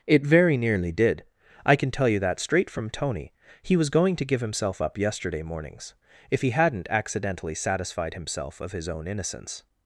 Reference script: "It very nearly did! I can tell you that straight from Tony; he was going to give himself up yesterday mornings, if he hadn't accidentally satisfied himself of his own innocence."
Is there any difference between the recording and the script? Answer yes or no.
no